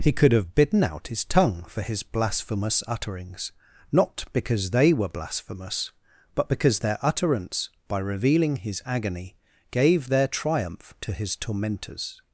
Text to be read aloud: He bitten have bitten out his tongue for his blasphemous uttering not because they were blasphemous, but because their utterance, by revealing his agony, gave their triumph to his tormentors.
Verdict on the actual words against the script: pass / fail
fail